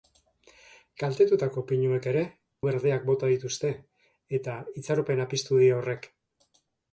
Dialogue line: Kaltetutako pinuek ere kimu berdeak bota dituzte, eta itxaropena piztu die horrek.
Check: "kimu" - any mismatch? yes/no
yes